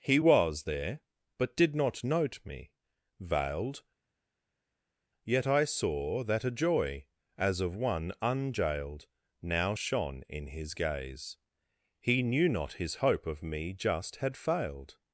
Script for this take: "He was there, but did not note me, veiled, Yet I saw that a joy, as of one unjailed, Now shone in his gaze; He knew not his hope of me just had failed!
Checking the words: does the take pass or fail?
pass